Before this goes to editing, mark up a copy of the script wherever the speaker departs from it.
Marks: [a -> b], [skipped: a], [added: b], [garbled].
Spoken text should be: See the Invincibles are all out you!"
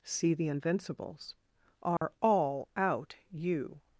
See the Invincibles are all out you!"